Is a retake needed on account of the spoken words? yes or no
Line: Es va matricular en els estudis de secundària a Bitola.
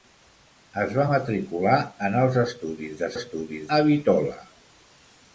yes